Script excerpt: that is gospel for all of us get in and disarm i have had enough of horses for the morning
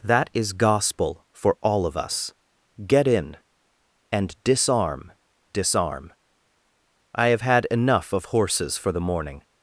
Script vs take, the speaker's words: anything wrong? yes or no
yes